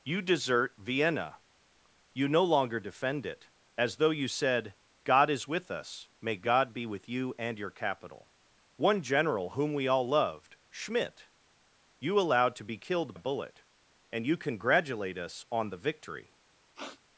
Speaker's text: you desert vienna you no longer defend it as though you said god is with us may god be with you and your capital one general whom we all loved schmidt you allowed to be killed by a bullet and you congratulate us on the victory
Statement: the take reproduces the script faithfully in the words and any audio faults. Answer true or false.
false